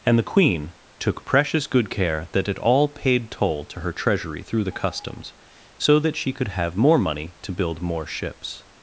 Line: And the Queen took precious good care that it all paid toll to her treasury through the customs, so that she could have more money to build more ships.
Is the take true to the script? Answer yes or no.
yes